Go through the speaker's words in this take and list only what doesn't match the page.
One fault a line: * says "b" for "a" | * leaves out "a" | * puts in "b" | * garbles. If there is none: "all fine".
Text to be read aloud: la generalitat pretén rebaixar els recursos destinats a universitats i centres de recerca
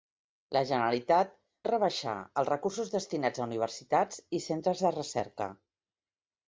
* leaves out "pretén"